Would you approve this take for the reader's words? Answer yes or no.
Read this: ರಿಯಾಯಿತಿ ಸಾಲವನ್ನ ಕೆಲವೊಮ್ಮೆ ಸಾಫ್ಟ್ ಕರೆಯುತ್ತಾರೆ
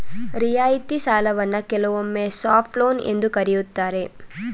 no